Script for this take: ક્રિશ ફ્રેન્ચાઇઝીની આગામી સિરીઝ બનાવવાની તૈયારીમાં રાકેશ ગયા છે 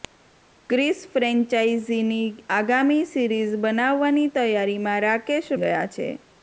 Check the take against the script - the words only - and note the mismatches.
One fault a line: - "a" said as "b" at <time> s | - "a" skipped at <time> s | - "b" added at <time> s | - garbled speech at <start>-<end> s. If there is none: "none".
none